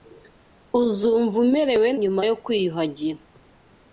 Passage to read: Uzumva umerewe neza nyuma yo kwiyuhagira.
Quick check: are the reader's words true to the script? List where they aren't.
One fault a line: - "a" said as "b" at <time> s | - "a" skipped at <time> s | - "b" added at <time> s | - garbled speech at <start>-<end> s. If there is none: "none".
- "neza" skipped at 1.9 s